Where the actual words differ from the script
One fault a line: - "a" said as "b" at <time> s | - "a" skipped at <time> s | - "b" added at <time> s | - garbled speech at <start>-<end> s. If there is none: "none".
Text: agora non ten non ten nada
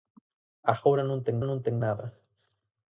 none